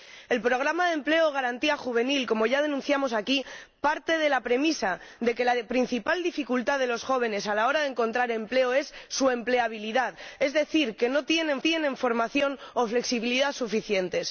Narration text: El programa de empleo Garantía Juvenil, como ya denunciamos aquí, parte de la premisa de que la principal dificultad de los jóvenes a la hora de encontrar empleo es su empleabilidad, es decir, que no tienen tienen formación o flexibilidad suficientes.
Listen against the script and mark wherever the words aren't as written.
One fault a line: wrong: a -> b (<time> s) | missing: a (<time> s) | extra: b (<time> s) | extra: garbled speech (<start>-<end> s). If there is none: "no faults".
no faults